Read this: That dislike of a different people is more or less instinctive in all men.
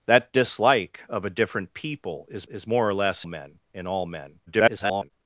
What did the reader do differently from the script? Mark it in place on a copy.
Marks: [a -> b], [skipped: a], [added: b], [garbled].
That dislike of a different people is [added: is] more or less [instinctive -> men] in all men. [garbled]